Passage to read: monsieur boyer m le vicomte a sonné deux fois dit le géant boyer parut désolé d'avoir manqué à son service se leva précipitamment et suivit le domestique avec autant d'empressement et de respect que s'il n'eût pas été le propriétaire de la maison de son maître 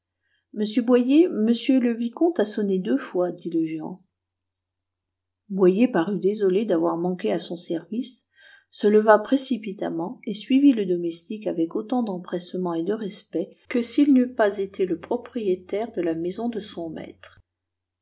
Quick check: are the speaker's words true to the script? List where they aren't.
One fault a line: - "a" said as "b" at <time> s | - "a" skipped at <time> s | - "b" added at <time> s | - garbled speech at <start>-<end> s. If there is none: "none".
none